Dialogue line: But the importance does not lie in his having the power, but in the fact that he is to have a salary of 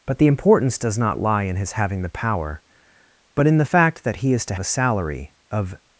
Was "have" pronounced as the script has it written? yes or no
no